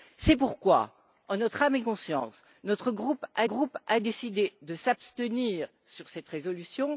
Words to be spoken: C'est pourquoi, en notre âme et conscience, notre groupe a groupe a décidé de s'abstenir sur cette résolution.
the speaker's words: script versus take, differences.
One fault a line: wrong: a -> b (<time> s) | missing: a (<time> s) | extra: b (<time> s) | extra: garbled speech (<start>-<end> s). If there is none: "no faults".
no faults